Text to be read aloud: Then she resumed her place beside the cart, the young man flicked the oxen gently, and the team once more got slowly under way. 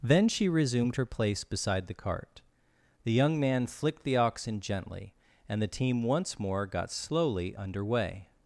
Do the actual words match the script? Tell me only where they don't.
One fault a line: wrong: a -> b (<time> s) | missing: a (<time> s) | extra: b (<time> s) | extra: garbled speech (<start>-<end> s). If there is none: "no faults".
no faults